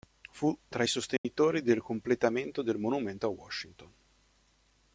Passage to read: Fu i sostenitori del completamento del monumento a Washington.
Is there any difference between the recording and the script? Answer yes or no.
yes